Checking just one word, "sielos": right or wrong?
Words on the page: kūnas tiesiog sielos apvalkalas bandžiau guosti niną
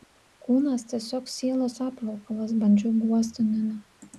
right